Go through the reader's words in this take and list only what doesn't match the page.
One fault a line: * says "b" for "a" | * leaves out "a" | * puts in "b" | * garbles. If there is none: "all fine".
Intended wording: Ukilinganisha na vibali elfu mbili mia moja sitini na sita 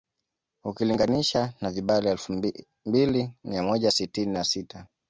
all fine